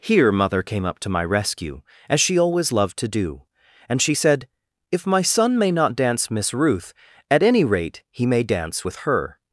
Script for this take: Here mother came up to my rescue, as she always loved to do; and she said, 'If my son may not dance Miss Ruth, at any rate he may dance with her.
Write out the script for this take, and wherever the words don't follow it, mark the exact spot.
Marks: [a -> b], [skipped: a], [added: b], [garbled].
Here mother came up to my rescue, as she always loved to do; and she said, 'If my son may not dance Miss Ruth, at any rate he may dance with her.